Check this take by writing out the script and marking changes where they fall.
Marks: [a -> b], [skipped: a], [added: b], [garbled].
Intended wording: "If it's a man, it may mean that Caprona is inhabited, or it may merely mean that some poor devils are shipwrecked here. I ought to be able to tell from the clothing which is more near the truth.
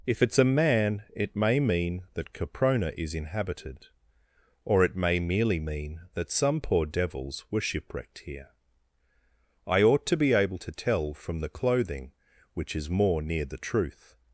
"If it's a man, it may mean that Caprona is inhabited, or it may merely mean that some poor devils [are -> were] shipwrecked here. I ought to be able to tell from the clothing which is more near the truth.